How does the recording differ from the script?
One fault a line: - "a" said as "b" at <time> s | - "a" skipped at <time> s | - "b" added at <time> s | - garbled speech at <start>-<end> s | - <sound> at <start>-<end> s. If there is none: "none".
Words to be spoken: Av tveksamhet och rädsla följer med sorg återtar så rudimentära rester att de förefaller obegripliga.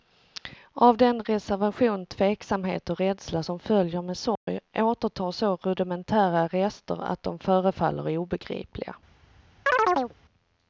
- "den reservation" added at 1.0 s
- "som" added at 3.4 s
- dropout at 4.4-4.5 s
- chirp at 9.7-10.1 s